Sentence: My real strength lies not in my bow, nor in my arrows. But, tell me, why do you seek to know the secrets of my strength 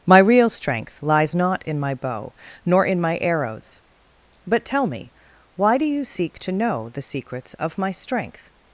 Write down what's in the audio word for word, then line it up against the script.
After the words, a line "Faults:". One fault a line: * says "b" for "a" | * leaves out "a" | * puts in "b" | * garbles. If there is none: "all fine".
My real strength lies not in my bow, nor in my arrows. But, tell me, why do you seek to know the secrets of my strength
Faults:
all fine